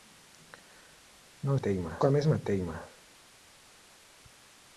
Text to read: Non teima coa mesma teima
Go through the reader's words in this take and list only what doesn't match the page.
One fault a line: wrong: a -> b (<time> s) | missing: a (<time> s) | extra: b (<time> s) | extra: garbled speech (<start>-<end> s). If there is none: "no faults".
no faults